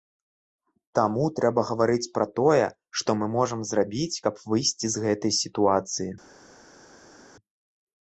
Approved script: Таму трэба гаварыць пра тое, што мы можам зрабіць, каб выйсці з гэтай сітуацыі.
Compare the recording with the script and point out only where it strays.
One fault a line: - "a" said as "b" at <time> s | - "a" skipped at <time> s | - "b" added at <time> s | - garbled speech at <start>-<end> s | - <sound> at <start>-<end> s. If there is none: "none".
none